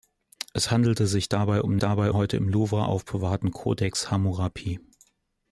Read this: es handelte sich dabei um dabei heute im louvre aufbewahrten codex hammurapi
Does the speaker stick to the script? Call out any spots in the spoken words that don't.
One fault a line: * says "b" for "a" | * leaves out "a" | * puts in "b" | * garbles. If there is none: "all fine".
all fine